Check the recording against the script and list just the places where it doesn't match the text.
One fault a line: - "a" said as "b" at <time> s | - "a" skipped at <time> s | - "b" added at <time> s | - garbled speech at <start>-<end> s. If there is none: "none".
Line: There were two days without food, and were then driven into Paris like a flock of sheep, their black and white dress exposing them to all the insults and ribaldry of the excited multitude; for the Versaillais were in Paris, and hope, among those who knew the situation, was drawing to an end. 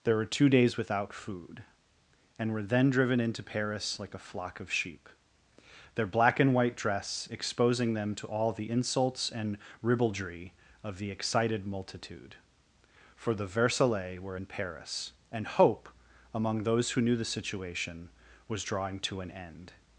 none